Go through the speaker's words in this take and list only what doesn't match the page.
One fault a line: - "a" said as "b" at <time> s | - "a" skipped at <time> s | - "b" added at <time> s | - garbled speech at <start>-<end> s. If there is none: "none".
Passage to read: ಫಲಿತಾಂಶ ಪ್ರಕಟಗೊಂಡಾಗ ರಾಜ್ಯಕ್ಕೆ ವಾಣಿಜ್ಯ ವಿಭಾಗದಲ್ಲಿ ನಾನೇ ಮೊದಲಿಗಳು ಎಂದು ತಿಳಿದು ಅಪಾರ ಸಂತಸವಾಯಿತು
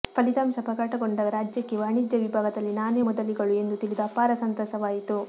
none